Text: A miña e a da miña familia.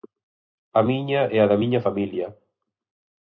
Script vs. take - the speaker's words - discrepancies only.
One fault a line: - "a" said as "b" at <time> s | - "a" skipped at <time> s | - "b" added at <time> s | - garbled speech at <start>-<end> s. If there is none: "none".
none